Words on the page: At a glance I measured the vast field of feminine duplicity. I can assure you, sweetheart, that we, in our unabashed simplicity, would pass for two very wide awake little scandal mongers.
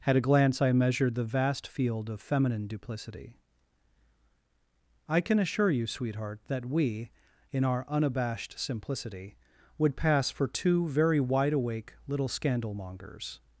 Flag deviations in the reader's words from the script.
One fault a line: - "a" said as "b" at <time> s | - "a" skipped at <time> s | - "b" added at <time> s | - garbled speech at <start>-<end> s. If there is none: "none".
none